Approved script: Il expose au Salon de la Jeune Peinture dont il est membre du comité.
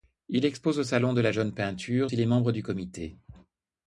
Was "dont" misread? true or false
true